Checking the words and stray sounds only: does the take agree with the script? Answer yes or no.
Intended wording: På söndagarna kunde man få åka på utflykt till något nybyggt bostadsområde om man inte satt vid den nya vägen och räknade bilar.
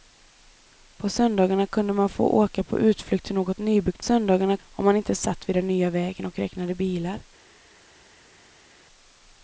no